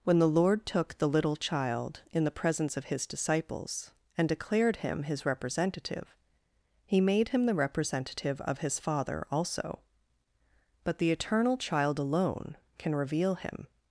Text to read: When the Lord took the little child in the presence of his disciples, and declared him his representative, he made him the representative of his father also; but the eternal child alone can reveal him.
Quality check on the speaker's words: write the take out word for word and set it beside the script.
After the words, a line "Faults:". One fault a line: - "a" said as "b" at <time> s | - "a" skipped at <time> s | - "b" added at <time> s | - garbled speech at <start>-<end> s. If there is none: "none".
When the Lord took the little child in the presence of his disciples, and declared him his representative, he made him the representative of his father also; but the eternal child alone can reveal him.
Faults:
none